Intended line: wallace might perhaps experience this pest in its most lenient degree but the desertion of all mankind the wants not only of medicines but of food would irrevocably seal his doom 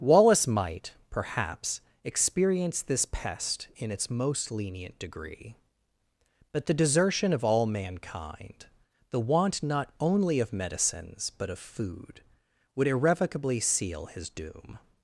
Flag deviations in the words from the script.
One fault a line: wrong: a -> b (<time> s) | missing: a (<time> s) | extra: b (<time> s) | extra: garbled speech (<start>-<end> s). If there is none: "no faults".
wrong: wants -> want (9.2 s)